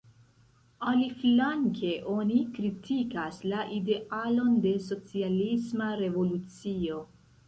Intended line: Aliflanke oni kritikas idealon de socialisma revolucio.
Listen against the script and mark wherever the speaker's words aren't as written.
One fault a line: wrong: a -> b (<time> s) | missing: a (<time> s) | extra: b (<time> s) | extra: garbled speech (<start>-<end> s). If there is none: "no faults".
extra: la (3.5 s)